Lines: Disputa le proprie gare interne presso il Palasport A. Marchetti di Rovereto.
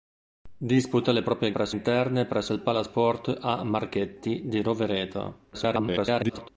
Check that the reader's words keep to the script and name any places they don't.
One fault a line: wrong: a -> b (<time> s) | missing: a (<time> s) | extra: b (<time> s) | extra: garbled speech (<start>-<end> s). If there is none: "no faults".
wrong: gare -> presso (1.5 s)
extra: garbled speech (5.5-6.5 s)